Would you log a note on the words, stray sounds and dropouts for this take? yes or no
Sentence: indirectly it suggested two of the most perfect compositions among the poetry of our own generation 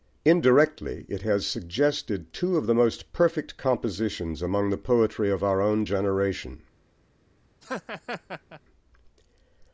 yes